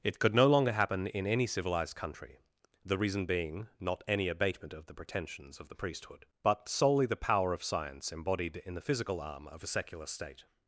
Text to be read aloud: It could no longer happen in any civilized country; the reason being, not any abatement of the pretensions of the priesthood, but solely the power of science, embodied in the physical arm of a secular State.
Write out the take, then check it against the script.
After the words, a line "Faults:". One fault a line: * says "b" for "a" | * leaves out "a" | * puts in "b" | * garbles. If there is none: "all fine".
It could no longer happen in any civilized country; the reason being, not any abatement of the pretensions of the priesthood, but solely the power of science, embodied in the physical arm of a secular State.
Faults:
all fine